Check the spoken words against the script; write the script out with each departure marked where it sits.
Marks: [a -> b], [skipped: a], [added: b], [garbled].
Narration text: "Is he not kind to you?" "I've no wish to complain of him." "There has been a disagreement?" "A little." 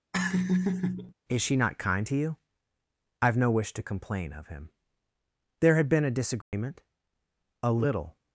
"Is [he -> she] not kind to you?" "I've no wish to complain of him." "There [has -> had] been a disagreement?" "A little."